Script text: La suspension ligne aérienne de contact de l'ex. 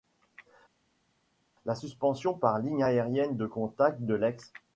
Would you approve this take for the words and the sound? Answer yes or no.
no